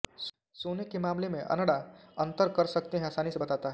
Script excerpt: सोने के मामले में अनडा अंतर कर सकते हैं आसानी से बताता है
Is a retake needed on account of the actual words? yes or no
no